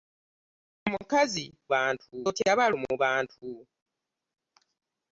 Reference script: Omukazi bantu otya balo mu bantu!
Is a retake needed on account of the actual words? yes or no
no